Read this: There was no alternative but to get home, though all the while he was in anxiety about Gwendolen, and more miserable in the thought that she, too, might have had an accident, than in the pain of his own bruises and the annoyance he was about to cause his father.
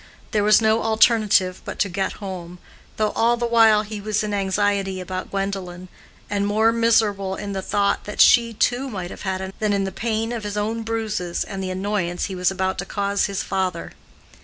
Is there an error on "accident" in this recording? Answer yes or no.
yes